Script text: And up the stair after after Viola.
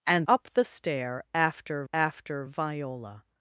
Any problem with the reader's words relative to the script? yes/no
no